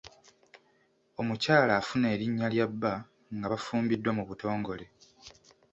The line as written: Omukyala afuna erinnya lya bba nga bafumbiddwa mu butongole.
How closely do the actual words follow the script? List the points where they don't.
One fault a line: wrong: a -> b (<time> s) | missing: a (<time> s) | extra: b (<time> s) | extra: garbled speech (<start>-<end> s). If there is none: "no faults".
no faults